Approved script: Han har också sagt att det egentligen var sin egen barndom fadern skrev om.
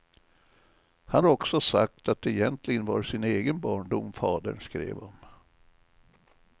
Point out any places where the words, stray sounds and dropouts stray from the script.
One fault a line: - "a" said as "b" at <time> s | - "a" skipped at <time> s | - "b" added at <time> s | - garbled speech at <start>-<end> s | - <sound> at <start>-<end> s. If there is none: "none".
- "har" skipped at 1.2 s